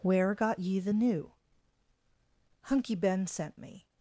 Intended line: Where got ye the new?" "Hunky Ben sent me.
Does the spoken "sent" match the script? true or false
true